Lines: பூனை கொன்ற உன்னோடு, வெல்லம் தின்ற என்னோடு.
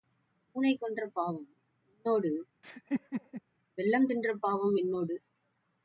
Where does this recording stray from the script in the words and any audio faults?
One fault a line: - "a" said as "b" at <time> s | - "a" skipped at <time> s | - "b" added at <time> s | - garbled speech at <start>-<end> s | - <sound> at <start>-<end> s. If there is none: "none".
- "பாவம்" added at 1.1 s
- laugh at 2.6-3.4 s
- "பாவம்" added at 4.4 s